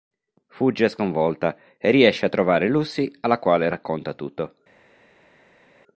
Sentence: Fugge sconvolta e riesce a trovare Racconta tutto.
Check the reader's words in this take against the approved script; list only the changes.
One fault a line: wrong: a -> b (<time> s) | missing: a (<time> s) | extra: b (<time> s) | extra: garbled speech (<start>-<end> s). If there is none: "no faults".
extra: Lucy alla quale (2.7 s)